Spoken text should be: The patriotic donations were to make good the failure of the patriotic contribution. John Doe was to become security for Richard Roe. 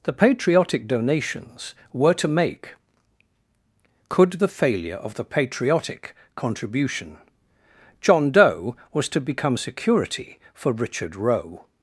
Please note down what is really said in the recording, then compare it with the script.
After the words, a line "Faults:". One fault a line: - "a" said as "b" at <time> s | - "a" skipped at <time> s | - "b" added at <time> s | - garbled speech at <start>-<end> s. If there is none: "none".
The patriotic donations were to make could the failure of the patriotic contribution. John Doe was to become security for Richard Roe.
Faults:
- "good" said as "could" at 4.1 s